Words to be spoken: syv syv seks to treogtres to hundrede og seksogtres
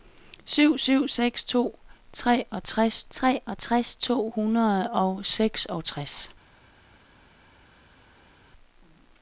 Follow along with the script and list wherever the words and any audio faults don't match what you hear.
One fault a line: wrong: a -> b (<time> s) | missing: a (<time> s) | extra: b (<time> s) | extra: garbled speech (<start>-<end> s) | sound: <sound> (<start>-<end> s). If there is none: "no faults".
extra: treogtres (3.1 s)